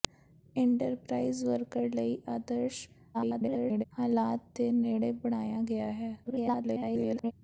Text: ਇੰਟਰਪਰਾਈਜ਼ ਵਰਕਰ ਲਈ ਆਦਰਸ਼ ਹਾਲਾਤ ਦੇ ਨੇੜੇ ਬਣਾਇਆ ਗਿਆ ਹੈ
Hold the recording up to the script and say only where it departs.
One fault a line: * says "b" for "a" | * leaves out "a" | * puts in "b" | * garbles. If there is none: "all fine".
* garbles
* garbles